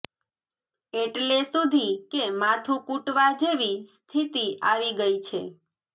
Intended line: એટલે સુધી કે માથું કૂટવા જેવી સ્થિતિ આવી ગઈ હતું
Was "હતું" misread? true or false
true